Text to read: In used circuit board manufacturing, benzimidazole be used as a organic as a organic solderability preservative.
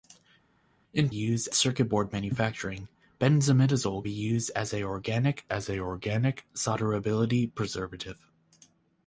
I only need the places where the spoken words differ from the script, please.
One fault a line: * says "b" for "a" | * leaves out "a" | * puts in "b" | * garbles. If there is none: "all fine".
all fine